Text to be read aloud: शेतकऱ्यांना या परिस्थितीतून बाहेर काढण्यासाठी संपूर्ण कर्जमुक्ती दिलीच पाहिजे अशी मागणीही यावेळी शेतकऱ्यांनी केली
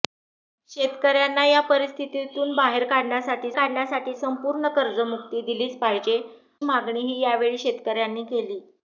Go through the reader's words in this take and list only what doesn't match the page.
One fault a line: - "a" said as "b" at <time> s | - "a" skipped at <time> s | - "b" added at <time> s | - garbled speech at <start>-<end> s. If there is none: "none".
- "काढण्यासाठी" added at 3.6 s
- "अशी" skipped at 6.2 s